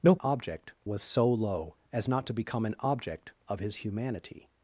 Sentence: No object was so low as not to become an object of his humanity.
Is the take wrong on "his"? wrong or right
right